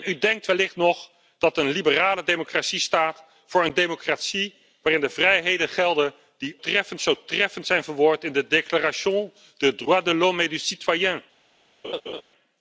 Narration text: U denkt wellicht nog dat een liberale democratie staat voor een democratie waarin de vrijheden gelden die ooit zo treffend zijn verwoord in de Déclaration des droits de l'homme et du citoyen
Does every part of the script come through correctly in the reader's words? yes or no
no